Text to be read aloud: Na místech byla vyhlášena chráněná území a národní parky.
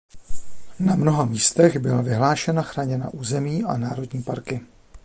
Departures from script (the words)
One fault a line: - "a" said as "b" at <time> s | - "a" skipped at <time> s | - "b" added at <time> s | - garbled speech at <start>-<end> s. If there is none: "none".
- "mnoha" added at 0.9 s